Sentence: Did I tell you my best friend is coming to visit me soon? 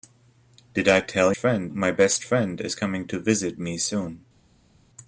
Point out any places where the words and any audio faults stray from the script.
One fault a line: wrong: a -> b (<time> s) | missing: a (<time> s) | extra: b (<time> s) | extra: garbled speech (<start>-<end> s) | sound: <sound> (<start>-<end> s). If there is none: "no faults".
wrong: you -> friend (1.4 s)